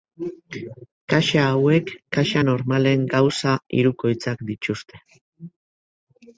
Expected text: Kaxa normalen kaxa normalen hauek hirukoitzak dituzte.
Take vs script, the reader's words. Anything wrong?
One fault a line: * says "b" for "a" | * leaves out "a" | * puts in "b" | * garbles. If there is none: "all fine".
* says "hauek" for "normalen"
* says "gauza" for "hauek"